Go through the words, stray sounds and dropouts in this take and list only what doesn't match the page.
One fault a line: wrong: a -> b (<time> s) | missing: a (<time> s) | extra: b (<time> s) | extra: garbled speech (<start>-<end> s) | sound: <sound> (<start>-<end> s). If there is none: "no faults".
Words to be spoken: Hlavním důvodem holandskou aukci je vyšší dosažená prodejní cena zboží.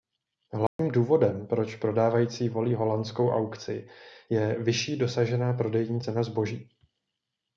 sound: dropout (0.7-0.8 s)
extra: proč prodávající volí (1.5 s)